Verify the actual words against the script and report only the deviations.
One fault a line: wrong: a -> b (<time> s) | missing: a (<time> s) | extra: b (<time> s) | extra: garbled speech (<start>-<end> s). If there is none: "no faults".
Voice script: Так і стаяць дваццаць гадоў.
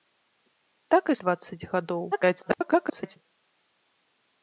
missing: стаяць (1.1 s)
extra: garbled speech (2.1-3.2 s)